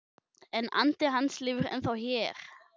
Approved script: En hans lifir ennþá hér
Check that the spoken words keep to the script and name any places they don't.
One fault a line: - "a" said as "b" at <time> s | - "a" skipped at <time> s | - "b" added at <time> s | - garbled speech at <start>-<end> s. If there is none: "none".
- "andi" added at 0.8 s